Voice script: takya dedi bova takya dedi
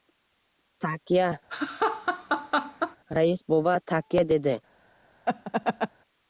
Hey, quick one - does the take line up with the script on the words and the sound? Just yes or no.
no